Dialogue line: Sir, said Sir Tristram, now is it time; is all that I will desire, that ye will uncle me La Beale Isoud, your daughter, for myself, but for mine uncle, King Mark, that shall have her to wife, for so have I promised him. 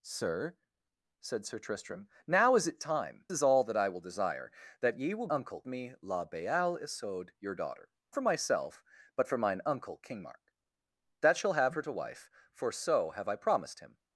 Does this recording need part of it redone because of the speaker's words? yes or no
no